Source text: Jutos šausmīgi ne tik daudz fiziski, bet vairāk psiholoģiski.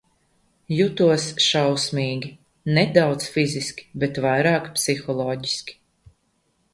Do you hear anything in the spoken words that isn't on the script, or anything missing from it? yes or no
yes